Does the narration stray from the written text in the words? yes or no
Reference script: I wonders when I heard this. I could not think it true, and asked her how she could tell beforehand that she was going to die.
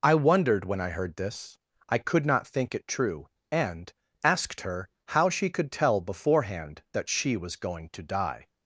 yes